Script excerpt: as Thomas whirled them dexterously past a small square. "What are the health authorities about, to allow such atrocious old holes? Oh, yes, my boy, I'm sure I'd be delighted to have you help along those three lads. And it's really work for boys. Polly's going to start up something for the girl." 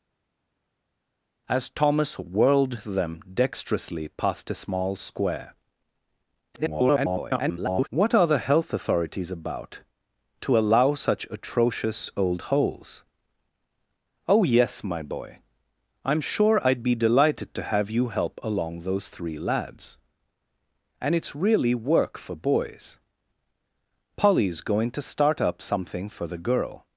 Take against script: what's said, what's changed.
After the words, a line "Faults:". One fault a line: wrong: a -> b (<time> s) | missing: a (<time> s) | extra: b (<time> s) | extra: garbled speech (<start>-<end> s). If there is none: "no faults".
as Thomas whirled them dexterously past a small square. [garbled] "What are the health authorities about, to allow such atrocious old holes? Oh, yes, my boy, I'm sure I'd be delighted to have you help along those three lads. And it's really work for boys. Polly's going to start up something for the girl."
Faults:
extra: garbled speech (6.5-7.9 s)